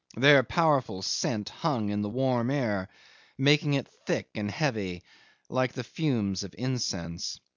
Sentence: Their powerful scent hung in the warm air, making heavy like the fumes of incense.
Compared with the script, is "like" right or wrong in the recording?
right